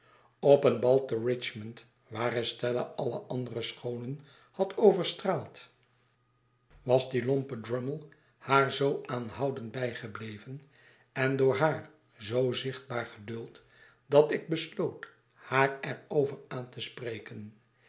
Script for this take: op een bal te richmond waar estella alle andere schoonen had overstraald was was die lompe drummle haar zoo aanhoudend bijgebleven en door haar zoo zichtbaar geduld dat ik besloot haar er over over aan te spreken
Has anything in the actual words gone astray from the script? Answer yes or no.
yes